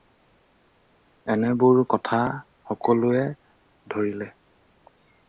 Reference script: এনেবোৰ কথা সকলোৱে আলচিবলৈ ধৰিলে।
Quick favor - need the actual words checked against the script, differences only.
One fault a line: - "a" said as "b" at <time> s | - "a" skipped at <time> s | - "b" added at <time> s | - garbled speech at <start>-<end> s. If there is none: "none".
- "আলচিবলৈ" skipped at 3.3 s